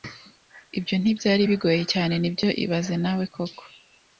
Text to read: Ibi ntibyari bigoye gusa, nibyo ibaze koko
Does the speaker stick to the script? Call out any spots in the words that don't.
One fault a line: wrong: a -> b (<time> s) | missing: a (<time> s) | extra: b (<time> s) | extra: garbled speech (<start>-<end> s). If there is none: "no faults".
wrong: Ibi -> Ibyo (0.8 s)
wrong: gusa -> cyane (1.9 s)
extra: nawe (3.0 s)